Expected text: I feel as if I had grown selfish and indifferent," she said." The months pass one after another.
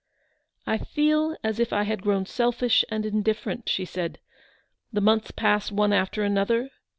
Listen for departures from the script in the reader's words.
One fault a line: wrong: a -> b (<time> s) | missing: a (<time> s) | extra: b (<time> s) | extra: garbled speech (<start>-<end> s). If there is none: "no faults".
no faults